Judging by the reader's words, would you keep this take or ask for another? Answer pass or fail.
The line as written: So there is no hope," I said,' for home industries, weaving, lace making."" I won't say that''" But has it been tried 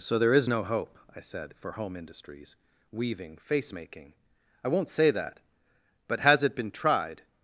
fail